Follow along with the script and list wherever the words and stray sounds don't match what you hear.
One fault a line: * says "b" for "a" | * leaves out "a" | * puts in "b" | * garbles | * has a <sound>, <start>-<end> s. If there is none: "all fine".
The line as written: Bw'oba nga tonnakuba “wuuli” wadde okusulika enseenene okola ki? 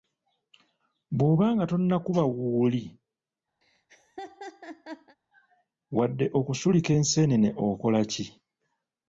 * has a laugh, 3.6-5.2 s